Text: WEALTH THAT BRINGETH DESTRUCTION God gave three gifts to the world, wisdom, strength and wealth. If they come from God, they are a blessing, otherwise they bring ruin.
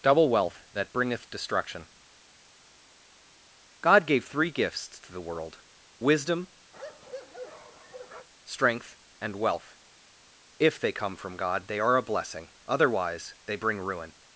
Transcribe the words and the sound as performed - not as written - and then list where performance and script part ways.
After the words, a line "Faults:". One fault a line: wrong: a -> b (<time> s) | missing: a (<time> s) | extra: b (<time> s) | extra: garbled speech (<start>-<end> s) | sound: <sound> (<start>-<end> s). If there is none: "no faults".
double WEALTH THAT BRINGETH DESTRUCTION God gave three gifts to the world, wisdom, strength and wealth. If they come from God, they are a blessing, otherwise they bring ruin.
Faults:
extra: double (0.0 s)
sound: bark (6.7-8.3 s)